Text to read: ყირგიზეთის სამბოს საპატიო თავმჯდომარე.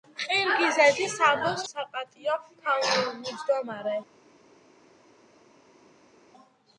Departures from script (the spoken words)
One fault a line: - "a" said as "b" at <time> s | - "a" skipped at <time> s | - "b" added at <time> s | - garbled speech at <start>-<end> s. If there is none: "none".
none